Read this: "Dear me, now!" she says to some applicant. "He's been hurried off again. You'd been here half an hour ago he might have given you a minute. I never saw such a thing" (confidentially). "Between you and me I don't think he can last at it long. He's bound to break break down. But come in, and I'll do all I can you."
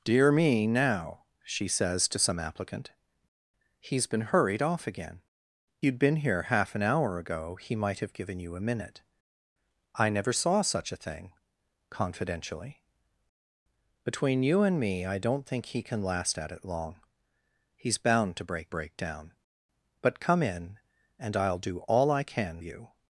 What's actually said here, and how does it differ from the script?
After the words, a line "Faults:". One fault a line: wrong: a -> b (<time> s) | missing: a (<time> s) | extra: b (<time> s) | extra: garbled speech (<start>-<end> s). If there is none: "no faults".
"Dear me, now!" she says to some applicant. "He's been hurried off again. You'd been here half an hour ago he might have given you a minute. I never saw such a thing" (confidentially). "Between you and me I don't think he can last at it long. He's bound to break break down. But come in, and I'll do all I can you."
Faults:
no faults